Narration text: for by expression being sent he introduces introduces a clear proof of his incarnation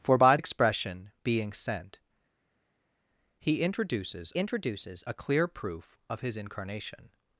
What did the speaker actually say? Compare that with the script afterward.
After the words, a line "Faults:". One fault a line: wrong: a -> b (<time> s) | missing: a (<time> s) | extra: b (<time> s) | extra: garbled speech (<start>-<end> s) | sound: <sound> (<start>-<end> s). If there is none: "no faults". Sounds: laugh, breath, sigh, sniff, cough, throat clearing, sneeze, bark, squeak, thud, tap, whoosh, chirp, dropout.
for by expression being sent he introduces introduces a clear proof of his incarnation
Faults:
no faults